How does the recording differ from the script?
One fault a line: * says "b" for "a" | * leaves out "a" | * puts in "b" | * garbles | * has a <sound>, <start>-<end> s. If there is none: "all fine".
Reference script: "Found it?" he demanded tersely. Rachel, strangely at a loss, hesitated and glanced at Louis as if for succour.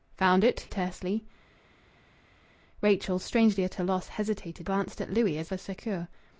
* leaves out "he demanded"
* leaves out "and"
* leaves out "if"